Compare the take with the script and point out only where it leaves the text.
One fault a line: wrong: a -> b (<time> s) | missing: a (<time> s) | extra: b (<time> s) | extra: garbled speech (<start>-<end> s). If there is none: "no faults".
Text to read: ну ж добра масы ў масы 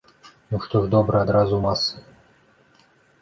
extra: што (0.6 s)
wrong: масы -> адразу (1.3 s)